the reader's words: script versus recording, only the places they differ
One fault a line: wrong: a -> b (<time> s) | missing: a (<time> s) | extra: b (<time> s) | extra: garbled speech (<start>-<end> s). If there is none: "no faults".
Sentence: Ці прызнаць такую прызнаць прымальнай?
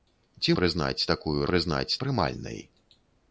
no faults